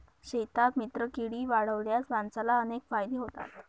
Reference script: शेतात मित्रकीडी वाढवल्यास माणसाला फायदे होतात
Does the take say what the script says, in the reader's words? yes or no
no